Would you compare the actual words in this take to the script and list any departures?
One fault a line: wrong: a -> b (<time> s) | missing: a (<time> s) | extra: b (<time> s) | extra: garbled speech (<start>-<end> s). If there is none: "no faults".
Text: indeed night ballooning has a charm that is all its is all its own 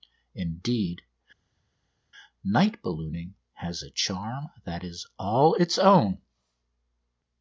missing: is all its (5.8 s)